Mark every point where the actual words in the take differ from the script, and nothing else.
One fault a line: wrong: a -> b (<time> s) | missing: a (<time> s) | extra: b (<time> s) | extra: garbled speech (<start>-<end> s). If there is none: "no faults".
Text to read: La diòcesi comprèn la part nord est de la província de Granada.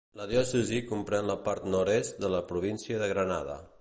no faults